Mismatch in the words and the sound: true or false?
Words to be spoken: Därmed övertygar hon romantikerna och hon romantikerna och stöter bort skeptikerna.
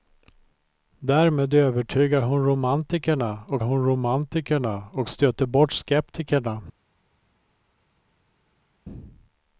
false